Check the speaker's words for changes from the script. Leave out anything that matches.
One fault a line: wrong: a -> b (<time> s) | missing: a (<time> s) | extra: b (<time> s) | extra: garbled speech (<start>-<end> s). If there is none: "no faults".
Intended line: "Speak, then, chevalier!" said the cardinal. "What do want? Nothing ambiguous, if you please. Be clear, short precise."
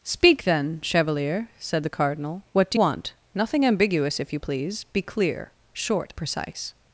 no faults